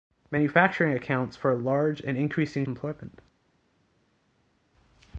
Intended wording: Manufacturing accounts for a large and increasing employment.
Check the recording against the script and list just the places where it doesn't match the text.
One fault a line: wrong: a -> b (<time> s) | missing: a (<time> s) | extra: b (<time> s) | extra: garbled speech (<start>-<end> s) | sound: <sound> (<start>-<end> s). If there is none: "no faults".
no faults